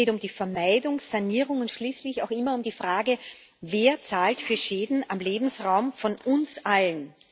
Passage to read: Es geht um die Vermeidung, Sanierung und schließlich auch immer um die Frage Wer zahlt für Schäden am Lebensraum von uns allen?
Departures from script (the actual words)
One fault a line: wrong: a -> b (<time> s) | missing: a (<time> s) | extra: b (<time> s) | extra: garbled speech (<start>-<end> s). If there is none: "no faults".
no faults